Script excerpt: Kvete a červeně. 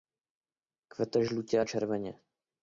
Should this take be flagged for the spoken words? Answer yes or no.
yes